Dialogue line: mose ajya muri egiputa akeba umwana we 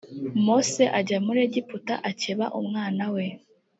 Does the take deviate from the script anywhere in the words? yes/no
no